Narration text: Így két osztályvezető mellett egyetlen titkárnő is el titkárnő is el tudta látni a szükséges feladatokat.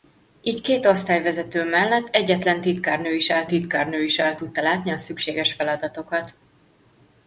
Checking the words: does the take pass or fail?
pass